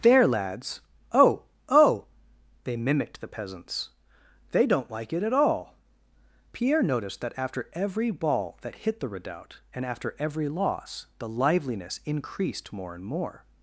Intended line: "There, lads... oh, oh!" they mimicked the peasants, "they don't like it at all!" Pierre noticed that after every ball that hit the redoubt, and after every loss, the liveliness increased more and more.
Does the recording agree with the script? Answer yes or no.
yes